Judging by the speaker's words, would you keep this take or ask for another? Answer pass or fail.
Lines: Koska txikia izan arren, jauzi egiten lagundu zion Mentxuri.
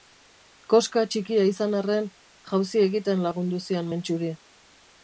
pass